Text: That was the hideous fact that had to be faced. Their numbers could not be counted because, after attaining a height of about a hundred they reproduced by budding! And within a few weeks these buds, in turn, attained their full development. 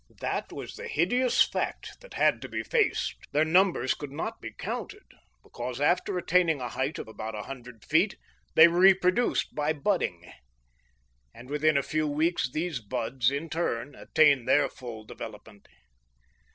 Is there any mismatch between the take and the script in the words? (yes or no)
yes